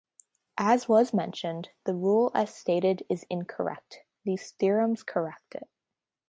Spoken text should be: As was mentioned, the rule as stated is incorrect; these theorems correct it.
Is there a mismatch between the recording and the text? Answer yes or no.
no